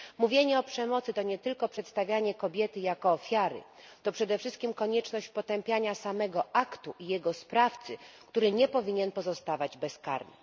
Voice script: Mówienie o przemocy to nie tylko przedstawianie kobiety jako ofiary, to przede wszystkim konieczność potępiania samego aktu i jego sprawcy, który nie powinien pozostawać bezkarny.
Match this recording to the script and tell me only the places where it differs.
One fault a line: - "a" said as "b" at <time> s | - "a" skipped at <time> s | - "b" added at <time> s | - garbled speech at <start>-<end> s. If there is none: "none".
none